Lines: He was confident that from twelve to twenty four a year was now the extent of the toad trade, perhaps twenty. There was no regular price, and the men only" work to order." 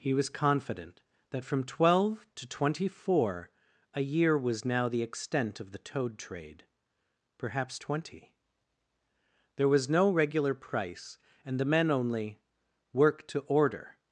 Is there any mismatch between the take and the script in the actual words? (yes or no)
no